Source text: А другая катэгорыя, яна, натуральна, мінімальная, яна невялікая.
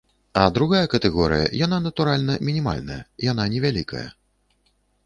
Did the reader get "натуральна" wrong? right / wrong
right